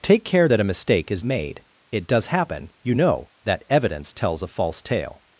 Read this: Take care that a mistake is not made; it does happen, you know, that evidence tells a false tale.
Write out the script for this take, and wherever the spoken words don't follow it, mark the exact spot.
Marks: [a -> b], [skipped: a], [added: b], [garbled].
Take care that a mistake is [skipped: not] made; it does happen, you know, that evidence tells a false tale.